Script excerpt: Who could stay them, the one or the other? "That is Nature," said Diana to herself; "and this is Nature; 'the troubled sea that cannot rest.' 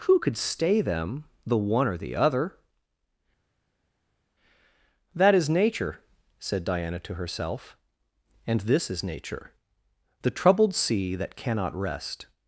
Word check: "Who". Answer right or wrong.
right